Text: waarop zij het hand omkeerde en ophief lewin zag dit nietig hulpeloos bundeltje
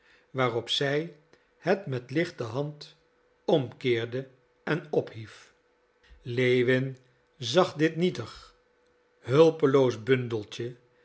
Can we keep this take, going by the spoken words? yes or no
no